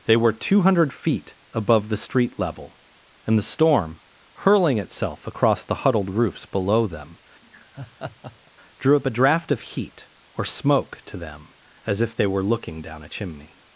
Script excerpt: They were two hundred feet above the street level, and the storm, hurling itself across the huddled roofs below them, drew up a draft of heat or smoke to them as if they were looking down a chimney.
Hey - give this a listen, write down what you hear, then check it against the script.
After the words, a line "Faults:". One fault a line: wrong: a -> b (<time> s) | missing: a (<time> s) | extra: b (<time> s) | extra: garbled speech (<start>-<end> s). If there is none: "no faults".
They were two hundred feet above the street level, and the storm, hurling itself across the huddled roofs below them, drew up a draft of heat or smoke to them as if they were looking down a chimney.
Faults:
no faults